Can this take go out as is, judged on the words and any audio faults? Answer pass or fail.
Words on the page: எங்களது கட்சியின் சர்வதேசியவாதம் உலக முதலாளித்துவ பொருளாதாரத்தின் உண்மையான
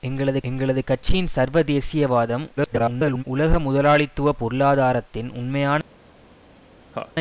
fail